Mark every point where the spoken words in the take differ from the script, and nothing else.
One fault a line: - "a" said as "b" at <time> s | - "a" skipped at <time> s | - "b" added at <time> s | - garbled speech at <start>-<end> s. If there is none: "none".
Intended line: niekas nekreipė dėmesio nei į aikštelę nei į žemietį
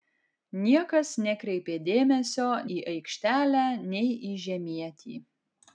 - "nei" skipped at 2.5 s